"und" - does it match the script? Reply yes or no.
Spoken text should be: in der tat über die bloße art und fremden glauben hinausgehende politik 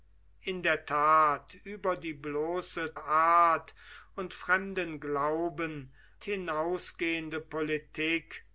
yes